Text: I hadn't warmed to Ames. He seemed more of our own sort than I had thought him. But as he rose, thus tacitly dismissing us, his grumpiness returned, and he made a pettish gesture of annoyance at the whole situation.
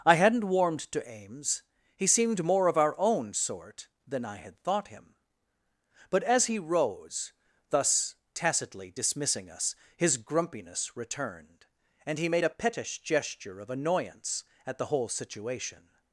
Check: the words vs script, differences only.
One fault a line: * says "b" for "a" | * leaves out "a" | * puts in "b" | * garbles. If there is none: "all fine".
all fine